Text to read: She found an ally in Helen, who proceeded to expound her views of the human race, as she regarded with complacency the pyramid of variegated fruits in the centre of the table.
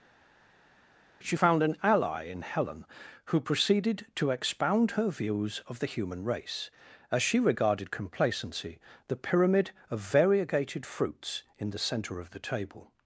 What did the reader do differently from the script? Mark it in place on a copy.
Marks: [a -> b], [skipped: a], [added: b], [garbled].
She found an ally in Helen, who proceeded to expound her views of the human race, as she regarded [skipped: with] complacency the pyramid of variegated fruits in the centre of the table.